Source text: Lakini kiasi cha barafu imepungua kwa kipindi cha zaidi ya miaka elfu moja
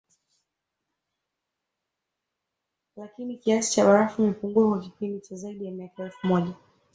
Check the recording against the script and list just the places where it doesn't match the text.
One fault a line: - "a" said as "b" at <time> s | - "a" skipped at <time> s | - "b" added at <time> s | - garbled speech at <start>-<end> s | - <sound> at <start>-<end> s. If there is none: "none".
none